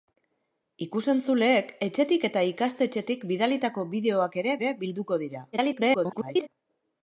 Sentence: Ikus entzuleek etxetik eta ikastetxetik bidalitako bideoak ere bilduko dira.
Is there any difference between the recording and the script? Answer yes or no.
yes